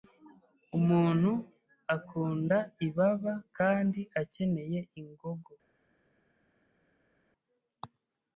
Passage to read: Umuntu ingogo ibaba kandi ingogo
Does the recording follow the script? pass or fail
fail